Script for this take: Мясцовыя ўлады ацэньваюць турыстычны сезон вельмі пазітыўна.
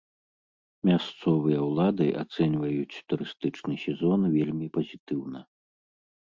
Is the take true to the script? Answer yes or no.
yes